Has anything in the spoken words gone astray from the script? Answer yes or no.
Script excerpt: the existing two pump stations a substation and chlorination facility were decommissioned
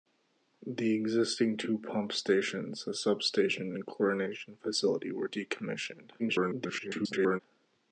yes